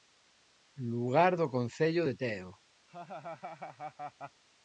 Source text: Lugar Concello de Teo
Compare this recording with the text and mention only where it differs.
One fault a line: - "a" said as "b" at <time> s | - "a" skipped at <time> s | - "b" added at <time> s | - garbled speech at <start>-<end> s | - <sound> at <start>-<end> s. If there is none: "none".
- "do" added at 1.4 s
- laugh at 2.9-4.4 s